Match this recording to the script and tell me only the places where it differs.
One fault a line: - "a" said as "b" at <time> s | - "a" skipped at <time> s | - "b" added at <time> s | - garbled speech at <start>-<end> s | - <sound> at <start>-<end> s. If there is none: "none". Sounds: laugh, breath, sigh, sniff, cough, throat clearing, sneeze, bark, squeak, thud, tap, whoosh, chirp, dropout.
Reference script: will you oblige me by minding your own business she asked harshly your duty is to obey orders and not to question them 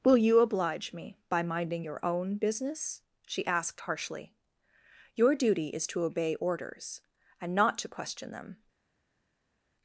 none